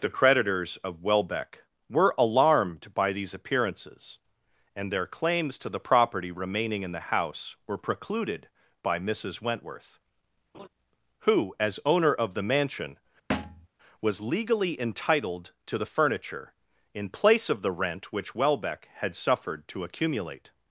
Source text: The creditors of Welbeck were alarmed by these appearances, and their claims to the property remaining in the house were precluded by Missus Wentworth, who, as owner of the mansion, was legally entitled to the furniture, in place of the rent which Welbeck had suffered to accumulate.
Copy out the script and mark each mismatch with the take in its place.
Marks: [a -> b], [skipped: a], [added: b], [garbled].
The creditors of Welbeck were alarmed by these appearances, and their claims to the property remaining in the house were precluded by Missus Wentworth, who, as owner of the mansion, was legally entitled to the furniture, in place of the rent which Welbeck had suffered to accumulate.